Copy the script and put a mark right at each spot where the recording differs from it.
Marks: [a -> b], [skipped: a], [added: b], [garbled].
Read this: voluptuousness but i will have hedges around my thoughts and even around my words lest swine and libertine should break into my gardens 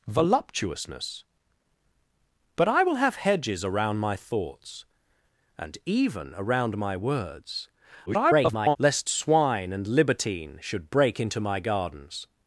voluptuousness but i will have hedges around my thoughts and even around my words [garbled] lest swine and libertine should break into my gardens